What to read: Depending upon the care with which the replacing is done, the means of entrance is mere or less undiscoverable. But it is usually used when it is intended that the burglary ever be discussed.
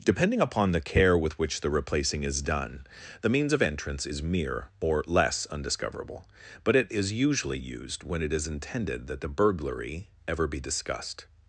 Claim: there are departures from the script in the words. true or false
false